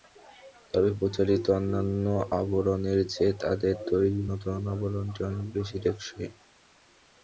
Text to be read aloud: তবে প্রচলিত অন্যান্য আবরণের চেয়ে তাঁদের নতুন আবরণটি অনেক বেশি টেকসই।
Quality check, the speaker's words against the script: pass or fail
fail